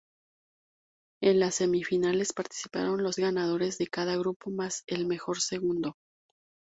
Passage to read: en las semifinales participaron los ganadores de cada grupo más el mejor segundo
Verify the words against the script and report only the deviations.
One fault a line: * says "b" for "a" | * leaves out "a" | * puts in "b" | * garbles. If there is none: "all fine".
all fine